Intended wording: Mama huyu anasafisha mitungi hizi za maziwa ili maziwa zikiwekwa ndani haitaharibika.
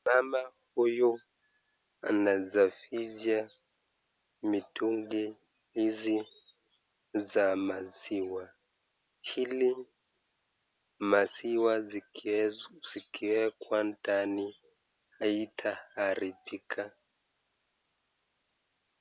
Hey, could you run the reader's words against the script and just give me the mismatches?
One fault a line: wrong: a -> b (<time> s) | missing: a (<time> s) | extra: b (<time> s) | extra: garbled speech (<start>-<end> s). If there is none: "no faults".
no faults